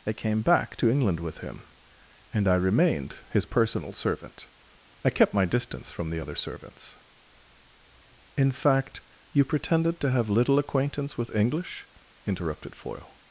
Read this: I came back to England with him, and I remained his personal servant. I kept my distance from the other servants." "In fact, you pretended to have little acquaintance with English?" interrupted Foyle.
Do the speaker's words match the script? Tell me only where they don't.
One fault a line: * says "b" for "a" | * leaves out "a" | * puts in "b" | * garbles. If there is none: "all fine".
all fine